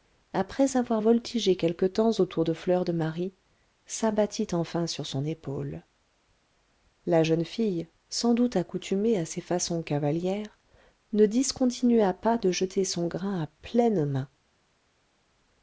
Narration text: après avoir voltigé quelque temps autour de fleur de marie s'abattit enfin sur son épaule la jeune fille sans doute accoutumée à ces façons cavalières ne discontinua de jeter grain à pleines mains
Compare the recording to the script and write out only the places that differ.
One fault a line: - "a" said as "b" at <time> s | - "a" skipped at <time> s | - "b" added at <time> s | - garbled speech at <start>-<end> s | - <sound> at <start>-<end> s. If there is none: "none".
- "pas" added at 12.1 s
- "son" added at 12.8 s